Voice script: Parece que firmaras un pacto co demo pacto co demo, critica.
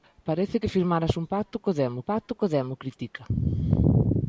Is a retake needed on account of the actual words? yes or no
no